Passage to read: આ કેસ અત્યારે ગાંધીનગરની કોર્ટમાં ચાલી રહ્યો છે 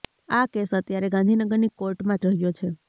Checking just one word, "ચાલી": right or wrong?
wrong